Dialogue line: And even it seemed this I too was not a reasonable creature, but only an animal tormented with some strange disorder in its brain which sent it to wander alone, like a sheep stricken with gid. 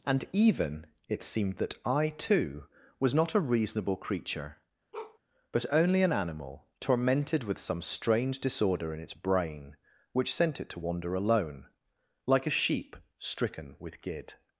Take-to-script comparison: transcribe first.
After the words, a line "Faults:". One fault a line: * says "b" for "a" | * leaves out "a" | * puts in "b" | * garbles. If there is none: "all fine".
And even it seemed that I too was not a reasonable creature, but only an animal tormented with some strange disorder in its brain which sent it to wander alone, like a sheep stricken with gid.
Faults:
* says "that" for "this"